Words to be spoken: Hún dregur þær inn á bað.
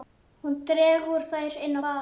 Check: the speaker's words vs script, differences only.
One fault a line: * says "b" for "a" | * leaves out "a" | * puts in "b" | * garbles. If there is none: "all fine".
all fine